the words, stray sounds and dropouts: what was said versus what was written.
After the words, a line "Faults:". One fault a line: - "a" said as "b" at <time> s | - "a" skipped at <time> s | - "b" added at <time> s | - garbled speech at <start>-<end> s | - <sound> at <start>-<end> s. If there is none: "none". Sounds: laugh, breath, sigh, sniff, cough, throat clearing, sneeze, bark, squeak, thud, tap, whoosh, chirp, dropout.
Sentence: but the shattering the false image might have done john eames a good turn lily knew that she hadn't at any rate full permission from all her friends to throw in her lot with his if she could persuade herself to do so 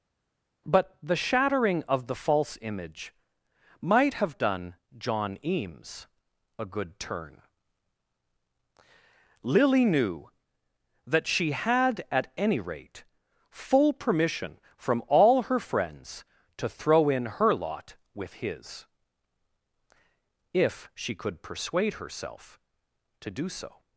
but the shattering of the false image might have done john eames a good turn lily knew that she had at any rate full permission from all her friends to throw in her lot with his if she could persuade herself to do so
Faults:
- "of" added at 1.9 s
- "hadn't" said as "had" at 11.5 s